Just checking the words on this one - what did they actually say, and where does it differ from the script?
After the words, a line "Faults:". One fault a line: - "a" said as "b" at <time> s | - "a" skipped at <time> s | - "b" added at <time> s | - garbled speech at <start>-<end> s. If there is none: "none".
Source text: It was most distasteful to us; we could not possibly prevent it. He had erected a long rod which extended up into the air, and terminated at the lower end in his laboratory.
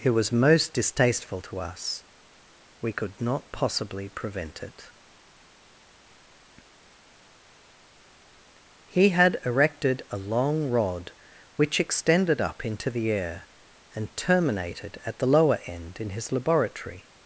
It was most distasteful to us; we could not possibly prevent it. He had erected a long rod which extended up into the air, and terminated at the lower end in his laboratory.
Faults:
none